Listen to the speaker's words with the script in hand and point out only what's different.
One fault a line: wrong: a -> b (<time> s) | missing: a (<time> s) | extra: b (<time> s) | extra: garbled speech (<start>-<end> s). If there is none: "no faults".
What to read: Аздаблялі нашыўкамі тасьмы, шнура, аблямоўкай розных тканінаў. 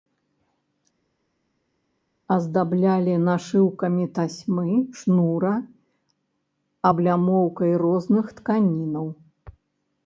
no faults